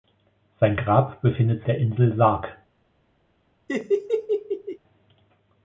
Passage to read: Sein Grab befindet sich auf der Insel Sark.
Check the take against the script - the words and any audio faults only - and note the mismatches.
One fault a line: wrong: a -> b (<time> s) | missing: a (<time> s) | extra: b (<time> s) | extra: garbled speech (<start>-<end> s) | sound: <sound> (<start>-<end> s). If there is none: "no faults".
missing: sich auf (1.6 s)
sound: laugh (3.7-4.8 s)